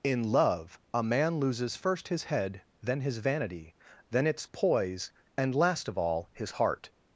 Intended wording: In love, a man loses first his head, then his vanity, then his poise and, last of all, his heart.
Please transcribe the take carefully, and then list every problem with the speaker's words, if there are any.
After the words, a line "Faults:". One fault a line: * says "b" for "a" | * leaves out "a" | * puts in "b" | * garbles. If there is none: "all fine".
In love, a man loses first his head, then his vanity, then its poise and, last of all, his heart.
Faults:
* says "its" for "his"